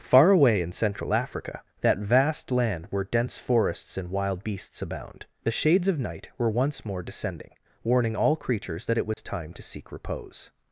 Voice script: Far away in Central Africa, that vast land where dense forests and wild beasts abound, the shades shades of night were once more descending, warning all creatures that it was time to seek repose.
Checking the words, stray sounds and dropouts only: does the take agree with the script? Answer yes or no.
no